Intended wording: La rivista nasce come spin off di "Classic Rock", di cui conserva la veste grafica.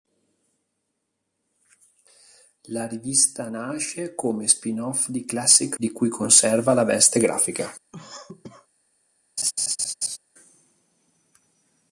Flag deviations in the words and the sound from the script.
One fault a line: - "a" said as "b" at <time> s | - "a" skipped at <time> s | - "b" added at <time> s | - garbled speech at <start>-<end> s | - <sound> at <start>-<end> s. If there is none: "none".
- "Rock" skipped at 5.8 s
- cough at 7.9-8.7 s
- laugh at 9.4-10.2 s